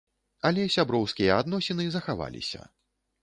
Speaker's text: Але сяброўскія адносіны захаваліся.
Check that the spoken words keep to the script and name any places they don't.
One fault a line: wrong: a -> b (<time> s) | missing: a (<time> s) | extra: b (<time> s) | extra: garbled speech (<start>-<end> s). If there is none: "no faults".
no faults